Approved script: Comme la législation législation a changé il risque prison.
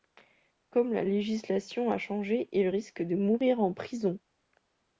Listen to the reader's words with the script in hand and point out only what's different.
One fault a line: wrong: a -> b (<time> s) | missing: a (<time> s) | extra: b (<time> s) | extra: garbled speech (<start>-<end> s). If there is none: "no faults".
missing: législation (1.9 s)
extra: de mourir en (3.0 s)